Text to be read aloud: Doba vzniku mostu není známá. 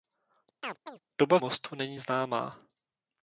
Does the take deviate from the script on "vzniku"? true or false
true